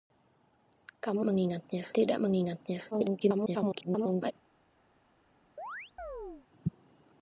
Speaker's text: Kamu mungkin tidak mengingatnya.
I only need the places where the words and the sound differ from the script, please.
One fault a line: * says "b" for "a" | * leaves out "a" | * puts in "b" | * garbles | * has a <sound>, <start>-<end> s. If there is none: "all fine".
* says "mengingatnya" for "mungkin"
* garbles
* has a chirp, 5.6-6.5 s